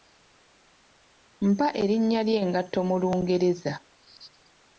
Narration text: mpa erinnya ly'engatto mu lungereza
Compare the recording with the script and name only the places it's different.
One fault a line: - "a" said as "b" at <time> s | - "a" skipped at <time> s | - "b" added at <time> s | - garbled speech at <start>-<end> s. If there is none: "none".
none